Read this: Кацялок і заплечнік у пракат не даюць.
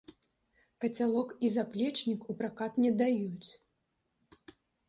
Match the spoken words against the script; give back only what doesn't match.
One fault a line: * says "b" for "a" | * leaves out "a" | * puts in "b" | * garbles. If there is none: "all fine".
all fine